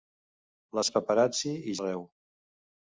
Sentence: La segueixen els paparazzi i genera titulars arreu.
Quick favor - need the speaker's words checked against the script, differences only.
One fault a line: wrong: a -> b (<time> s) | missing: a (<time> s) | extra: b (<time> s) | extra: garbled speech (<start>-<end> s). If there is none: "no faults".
missing: segueixen (0.8 s)
missing: genera titulars (1.8 s)